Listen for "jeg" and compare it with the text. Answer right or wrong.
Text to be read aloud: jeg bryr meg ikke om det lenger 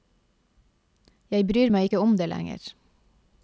right